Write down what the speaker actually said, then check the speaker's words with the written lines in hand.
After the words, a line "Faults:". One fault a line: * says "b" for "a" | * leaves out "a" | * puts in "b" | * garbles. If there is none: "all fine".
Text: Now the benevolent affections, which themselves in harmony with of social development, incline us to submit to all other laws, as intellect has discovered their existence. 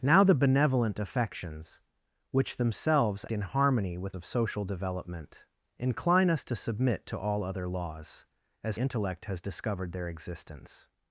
Now the benevolent affections, which themselves in harmony with of social development, incline us to submit to all other laws, as intellect has discovered their existence.
Faults:
all fine